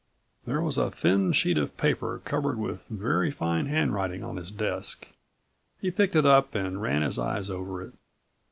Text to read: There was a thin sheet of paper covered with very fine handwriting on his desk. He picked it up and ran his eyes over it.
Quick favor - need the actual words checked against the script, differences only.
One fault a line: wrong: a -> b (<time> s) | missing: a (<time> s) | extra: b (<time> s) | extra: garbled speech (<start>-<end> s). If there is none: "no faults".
no faults